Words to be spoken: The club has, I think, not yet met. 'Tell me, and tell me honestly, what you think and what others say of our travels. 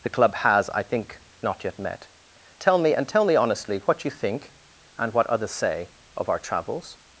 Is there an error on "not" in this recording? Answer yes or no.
no